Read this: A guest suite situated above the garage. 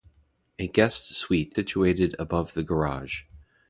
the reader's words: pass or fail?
pass